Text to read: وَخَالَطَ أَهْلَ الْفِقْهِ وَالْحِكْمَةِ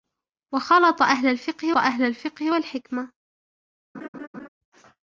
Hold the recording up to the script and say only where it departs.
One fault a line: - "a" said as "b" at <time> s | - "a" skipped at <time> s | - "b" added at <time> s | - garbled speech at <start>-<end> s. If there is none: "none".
- "أَهْلَ الْفِقْهِ" added at 1.8 s